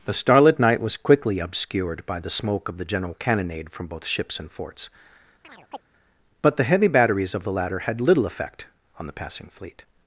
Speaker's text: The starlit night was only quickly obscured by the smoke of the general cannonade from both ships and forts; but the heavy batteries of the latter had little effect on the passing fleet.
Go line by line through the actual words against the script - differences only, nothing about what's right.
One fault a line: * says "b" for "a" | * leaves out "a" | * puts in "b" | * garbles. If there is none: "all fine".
* leaves out "only"